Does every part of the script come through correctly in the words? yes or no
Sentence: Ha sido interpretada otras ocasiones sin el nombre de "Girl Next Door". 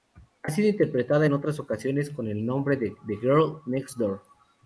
no